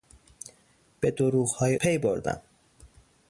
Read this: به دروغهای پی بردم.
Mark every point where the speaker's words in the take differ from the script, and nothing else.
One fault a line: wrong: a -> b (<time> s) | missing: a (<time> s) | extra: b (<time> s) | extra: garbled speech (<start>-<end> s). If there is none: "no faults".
no faults